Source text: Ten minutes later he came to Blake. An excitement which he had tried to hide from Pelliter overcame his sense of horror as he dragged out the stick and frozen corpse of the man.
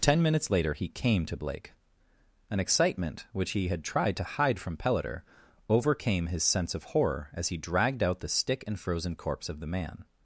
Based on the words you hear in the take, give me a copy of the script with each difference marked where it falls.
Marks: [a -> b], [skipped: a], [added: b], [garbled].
Ten minutes later he came to Blake. An excitement which he had tried to hide from Pelliter overcame his sense of horror as he dragged out the stick and frozen corpse of the man.